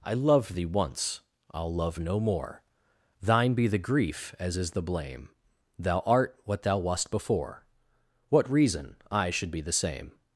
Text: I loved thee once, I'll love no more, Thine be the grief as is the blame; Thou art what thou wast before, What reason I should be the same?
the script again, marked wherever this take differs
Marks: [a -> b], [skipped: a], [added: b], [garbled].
I loved thee once, I'll love no more, Thine be the grief as is the blame; Thou art what thou wast before, What reason I should be the same?